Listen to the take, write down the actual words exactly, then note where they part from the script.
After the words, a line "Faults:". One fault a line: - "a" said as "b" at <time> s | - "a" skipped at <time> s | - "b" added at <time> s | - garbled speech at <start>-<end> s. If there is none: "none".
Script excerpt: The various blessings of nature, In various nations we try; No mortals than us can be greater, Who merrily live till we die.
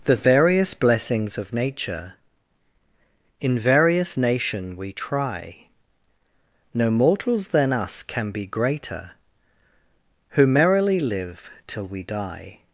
The various blessings of nature, In various nation we try; No mortals than us can be greater, Who merrily live till we die.
Faults:
- "nations" said as "nation" at 4.2 s